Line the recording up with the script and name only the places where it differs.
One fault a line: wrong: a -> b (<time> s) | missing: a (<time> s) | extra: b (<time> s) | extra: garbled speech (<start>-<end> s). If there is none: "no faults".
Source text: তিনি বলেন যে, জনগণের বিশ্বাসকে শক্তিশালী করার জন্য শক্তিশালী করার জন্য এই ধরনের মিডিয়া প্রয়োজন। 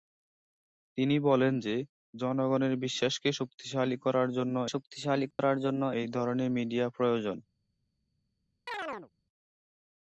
no faults